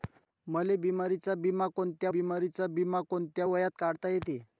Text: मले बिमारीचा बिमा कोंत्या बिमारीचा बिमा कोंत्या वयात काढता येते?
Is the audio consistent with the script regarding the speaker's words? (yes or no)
yes